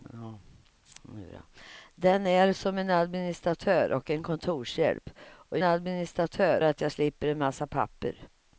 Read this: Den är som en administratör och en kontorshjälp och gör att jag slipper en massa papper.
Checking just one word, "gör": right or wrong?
wrong